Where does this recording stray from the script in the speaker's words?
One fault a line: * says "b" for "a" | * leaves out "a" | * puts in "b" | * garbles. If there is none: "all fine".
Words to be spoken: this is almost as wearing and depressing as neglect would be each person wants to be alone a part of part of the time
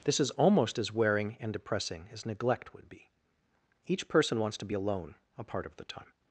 * leaves out "part of"